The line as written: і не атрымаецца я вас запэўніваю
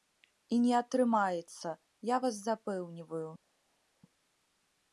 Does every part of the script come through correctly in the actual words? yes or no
yes